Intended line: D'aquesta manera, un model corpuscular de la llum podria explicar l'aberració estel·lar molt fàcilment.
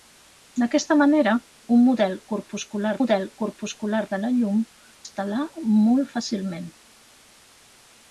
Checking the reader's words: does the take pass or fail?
fail